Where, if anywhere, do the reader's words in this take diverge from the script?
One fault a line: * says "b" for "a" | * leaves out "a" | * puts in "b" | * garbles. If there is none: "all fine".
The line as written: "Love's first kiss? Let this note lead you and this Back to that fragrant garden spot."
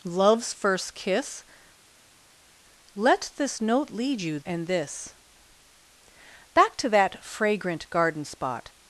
all fine